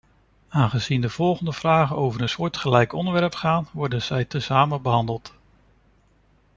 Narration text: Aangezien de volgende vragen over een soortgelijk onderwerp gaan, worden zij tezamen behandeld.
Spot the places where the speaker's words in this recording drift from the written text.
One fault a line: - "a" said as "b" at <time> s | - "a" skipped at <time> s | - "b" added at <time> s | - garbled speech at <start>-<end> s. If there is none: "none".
none